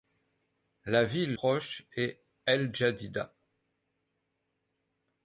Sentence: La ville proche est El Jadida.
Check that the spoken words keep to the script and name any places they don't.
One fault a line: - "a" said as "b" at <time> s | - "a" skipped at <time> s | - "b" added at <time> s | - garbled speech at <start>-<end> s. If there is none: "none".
none